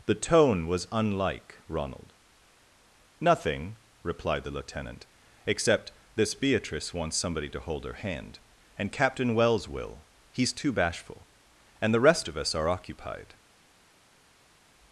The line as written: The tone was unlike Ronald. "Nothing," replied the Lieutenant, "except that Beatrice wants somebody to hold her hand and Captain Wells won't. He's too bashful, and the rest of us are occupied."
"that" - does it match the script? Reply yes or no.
no